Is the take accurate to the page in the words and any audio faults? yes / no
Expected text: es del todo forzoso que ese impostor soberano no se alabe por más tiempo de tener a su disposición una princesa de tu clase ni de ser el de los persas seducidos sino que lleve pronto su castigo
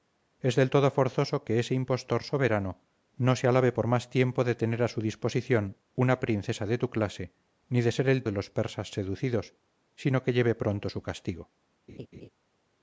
no